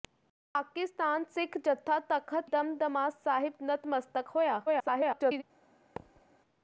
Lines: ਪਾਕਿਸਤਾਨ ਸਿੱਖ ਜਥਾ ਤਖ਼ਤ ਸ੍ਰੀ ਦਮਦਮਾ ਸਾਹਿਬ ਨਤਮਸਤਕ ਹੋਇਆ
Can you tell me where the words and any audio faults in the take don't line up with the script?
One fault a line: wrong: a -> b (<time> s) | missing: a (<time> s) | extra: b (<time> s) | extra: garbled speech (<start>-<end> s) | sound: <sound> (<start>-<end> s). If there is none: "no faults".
missing: ਸ੍ਰੀ (2.5 s)
extra: garbled speech (4.7-5.4 s)
sound: thud (6.0-6.2 s)